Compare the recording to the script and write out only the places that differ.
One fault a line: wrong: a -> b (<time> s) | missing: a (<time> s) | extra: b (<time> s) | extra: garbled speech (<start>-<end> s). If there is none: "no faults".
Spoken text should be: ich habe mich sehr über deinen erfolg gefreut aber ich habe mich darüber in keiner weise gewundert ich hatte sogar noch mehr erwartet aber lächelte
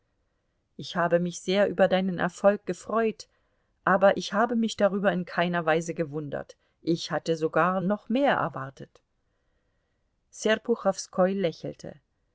wrong: aber -> serpuchowskoi (10.3 s)